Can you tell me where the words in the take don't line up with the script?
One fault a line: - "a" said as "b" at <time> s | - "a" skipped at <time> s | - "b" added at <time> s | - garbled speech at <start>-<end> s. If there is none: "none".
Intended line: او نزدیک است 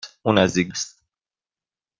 none